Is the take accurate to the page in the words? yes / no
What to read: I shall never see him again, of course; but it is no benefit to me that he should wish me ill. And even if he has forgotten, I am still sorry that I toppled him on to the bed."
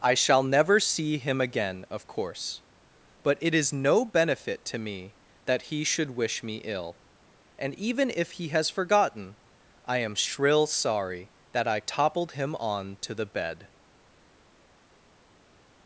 no